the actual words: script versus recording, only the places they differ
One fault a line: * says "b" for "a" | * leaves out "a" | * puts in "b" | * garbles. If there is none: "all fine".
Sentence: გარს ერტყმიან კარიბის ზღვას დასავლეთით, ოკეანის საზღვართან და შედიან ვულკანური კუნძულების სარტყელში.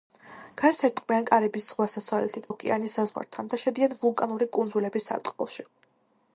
all fine